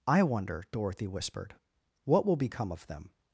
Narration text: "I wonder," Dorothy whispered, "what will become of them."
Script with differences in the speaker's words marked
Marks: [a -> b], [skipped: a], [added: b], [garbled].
"I wonder," Dorothy whispered, "what will become of them."